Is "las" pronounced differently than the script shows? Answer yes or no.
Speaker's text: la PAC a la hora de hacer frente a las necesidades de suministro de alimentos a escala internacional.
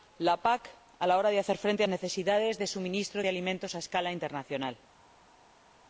yes